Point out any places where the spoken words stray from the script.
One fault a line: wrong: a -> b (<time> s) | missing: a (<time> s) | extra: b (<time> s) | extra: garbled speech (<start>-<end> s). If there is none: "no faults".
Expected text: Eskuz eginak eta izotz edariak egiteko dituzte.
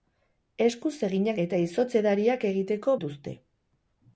no faults